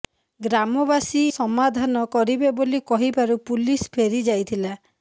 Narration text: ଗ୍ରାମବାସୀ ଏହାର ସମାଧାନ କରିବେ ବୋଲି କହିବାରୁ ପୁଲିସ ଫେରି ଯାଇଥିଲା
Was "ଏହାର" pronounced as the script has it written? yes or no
no